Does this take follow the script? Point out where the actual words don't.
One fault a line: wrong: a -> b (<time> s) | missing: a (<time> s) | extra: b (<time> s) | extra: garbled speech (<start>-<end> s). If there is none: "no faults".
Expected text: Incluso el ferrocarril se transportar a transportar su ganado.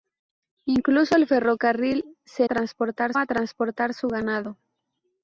no faults